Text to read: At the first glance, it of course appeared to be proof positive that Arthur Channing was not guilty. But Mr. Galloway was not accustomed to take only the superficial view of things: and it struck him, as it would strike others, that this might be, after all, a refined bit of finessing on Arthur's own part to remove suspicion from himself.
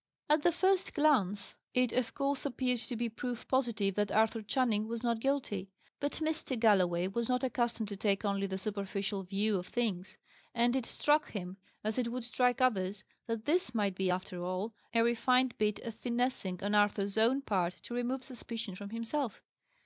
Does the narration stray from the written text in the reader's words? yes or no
no